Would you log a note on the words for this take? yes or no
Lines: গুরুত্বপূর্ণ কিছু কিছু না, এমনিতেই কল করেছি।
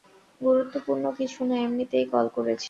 yes